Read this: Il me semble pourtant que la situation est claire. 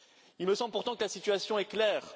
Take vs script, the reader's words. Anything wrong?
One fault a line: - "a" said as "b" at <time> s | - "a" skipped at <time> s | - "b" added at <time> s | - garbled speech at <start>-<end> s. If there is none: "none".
none